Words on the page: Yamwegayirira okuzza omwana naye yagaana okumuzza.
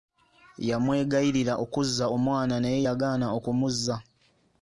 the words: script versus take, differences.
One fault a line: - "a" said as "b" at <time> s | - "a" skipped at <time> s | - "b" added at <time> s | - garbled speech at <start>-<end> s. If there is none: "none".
none